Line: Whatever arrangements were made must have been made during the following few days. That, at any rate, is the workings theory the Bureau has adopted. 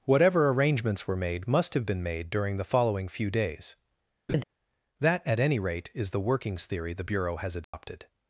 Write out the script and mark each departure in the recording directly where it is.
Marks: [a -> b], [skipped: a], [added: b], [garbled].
Whatever arrangements were made must have been made during the following few days. That, at any rate, is the workings theory the Bureau has adopted.